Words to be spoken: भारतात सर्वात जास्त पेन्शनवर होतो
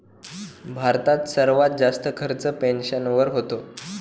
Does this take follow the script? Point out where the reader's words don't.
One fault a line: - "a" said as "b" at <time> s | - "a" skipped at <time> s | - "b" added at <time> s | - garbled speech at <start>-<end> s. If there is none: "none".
- "खर्च" added at 2.2 s